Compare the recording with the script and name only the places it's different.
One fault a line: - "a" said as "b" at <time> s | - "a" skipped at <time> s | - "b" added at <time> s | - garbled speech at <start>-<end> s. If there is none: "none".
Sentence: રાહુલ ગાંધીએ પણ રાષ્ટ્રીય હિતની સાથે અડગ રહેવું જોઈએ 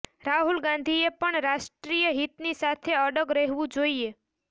none